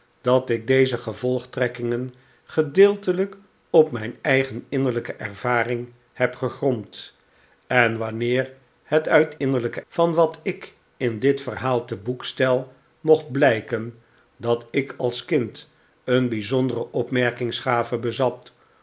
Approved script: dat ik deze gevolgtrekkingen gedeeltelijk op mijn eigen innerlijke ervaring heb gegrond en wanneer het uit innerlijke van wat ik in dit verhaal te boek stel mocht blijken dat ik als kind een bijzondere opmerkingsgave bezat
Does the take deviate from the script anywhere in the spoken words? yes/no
no